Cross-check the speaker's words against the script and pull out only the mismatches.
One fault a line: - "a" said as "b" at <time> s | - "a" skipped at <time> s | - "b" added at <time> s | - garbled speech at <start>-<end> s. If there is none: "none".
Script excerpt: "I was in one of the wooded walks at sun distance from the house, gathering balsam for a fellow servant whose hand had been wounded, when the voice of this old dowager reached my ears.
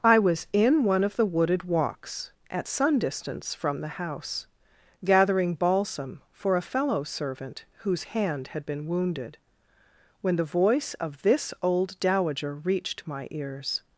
none